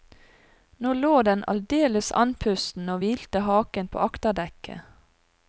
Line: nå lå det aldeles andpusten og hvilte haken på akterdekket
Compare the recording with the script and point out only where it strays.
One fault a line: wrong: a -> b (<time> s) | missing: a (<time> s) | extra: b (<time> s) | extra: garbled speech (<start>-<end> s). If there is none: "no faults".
wrong: det -> den (1.3 s)